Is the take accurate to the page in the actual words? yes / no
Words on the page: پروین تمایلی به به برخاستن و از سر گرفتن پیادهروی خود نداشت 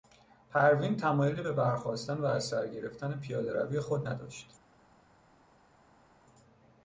no